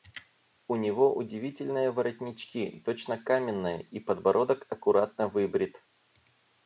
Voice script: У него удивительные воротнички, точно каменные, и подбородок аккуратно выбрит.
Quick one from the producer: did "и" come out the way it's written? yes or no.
yes